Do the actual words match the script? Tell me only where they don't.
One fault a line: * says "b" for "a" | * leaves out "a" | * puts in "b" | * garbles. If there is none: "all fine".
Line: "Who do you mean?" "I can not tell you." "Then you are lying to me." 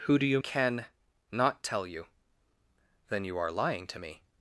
* leaves out "mean I"